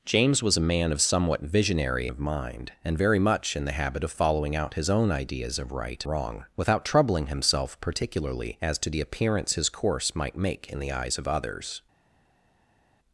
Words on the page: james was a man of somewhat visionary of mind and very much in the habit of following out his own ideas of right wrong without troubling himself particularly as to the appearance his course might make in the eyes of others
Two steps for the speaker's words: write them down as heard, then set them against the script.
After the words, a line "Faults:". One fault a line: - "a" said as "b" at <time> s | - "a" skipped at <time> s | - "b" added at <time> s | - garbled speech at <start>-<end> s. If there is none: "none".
james was a man of somewhat visionary of mind and very much in the habit of following out his own ideas of right wrong without troubling himself particularly as to the appearance his course might make in the eyes of others
Faults:
none